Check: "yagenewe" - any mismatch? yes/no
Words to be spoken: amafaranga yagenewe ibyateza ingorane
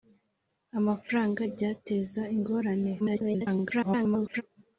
yes